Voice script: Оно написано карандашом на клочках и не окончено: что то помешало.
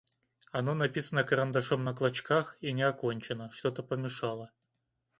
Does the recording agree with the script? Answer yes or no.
yes